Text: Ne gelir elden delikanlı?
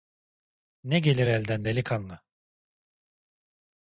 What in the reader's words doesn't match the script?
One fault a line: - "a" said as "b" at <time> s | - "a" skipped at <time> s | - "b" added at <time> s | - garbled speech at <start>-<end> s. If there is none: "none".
none